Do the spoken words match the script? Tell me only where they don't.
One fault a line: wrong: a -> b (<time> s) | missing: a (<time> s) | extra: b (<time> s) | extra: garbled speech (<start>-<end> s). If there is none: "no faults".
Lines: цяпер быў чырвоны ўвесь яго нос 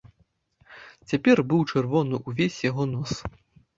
no faults